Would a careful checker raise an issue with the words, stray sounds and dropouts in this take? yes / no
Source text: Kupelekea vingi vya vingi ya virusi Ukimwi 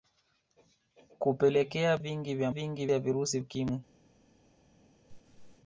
yes